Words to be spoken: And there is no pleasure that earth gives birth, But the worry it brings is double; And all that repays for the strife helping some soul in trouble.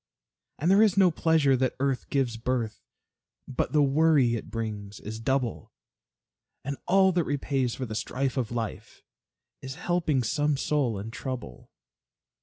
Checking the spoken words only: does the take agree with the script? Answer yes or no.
no